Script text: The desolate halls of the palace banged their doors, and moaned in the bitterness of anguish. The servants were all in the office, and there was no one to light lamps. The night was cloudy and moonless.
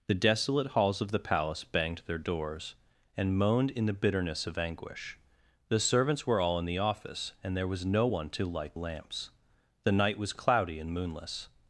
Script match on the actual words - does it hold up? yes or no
yes